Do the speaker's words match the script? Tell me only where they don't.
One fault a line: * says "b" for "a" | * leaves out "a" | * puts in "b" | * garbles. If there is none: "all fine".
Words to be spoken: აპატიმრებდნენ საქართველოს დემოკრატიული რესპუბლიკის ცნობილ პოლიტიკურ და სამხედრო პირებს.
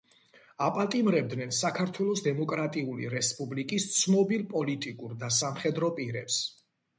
all fine